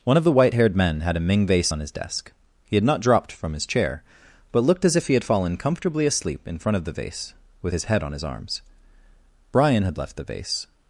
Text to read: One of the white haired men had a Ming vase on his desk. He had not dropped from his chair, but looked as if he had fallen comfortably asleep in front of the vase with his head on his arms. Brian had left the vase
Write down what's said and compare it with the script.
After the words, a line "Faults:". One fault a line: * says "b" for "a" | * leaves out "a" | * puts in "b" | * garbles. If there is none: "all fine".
One of the white haired men had a Ming vase on his desk. He had not dropped from his chair, but looked as if he had fallen comfortably asleep in front of the vase with his head on his arms. Brian had left the vase
Faults:
all fine